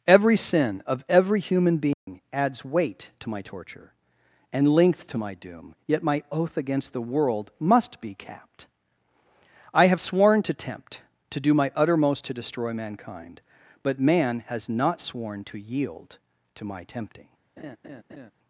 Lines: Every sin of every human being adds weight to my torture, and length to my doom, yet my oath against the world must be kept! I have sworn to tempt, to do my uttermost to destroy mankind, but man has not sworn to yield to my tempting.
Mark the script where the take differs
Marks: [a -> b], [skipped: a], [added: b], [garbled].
Every sin of every human being adds weight to my torture, and length to my doom, yet my oath against the world must be [kept! -> capped] I have sworn to tempt, to do my uttermost to destroy mankind, but man has not sworn to yield to my tempting.